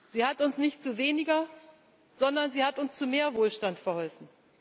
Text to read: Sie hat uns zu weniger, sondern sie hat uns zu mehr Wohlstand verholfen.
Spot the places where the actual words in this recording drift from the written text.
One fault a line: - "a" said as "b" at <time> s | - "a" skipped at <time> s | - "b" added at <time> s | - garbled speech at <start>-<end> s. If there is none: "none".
- "nicht" added at 0.6 s